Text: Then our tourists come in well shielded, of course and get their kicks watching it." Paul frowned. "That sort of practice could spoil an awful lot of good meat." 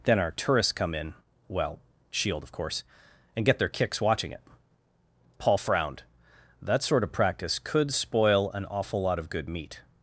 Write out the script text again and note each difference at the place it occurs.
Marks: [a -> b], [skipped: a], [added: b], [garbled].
Then our tourists come in well [shielded, -> shield] of course and get their kicks watching it." Paul frowned. "That sort of practice could spoil an awful lot of good meat."